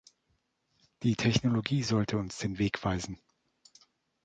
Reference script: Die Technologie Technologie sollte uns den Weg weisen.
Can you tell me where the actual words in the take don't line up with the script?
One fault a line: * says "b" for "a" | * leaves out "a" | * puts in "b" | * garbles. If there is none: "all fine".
* leaves out "Technologie"